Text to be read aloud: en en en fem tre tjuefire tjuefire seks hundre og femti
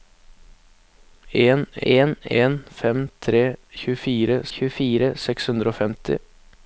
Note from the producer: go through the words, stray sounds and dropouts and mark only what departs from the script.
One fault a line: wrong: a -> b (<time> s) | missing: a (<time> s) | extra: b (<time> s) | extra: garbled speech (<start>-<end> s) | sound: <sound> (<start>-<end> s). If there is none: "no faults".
no faults